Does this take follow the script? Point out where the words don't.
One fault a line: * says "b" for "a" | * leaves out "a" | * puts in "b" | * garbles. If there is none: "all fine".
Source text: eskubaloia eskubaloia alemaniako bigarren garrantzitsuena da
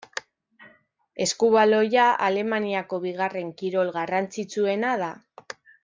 * leaves out "eskubaloia"
* puts in "kirol"